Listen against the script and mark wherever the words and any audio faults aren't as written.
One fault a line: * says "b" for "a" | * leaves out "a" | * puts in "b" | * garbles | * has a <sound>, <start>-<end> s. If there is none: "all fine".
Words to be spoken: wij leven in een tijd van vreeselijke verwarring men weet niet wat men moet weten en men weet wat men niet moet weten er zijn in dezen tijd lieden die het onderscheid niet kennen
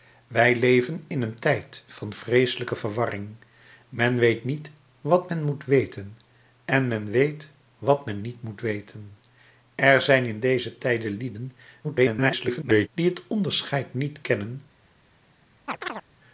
* garbles
* has a chirp, 15.7-16.0 s